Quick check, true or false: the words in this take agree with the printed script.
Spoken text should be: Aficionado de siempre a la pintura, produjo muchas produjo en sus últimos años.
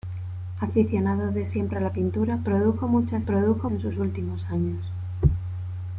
true